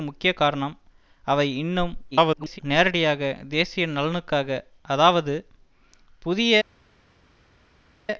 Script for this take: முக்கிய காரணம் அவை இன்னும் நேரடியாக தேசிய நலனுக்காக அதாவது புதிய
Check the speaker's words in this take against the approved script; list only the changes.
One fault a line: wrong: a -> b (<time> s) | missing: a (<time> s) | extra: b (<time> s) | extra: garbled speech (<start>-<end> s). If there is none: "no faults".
extra: garbled speech (2.1-2.6 s)